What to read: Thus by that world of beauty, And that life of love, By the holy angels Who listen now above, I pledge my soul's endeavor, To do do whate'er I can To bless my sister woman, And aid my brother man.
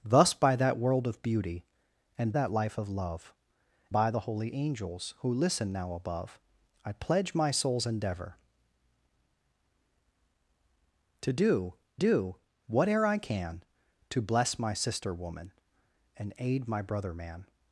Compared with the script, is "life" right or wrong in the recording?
right